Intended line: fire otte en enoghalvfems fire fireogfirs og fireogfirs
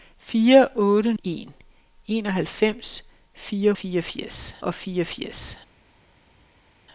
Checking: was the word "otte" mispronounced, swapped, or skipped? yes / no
no